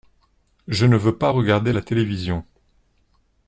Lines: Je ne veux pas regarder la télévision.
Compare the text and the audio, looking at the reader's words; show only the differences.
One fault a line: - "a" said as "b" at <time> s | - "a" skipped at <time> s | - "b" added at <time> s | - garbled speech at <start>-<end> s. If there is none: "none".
none